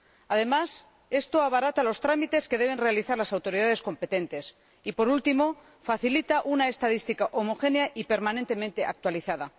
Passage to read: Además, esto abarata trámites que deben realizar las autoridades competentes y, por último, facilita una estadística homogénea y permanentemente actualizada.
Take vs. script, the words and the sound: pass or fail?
fail